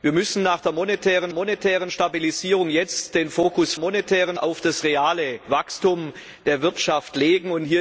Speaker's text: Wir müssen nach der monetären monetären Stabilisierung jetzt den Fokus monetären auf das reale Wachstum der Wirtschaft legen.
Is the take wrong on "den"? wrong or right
right